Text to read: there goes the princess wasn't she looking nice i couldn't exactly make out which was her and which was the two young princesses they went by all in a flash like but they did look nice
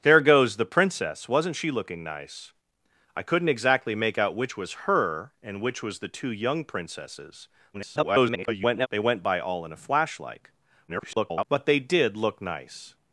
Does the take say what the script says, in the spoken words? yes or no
no